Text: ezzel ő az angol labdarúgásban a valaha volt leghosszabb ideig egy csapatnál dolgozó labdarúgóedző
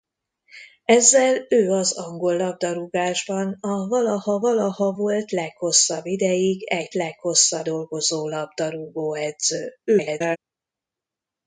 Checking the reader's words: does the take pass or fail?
fail